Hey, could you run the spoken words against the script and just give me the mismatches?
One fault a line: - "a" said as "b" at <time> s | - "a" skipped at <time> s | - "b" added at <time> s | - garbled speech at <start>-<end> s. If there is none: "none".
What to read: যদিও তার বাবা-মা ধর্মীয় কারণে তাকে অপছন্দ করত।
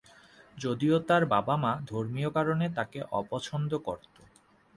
none